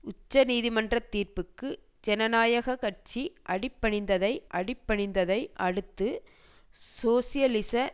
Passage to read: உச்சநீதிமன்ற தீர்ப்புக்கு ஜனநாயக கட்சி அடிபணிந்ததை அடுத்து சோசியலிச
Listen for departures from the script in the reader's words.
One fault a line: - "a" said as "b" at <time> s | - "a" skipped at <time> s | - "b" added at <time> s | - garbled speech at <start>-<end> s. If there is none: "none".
- "அடிபணிந்ததை" added at 4.5 s